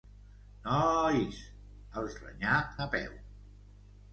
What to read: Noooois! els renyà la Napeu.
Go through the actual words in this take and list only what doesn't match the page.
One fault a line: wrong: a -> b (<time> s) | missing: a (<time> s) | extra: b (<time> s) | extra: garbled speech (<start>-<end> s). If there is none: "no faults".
missing: la (2.6 s)